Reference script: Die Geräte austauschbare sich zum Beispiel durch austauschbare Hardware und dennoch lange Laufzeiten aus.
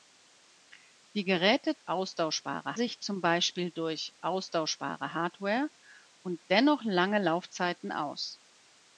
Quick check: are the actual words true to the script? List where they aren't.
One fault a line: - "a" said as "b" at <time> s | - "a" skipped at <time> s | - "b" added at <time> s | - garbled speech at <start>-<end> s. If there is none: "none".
none